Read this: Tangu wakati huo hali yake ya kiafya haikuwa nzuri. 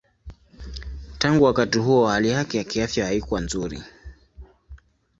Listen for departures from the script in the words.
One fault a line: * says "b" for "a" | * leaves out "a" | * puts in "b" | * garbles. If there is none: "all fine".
all fine